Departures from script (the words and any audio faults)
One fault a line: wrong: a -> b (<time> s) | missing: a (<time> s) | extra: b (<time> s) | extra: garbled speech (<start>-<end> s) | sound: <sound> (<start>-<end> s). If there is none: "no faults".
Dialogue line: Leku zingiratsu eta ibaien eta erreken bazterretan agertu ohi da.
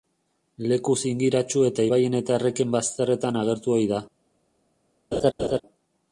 sound: laugh (5.1-5.6 s)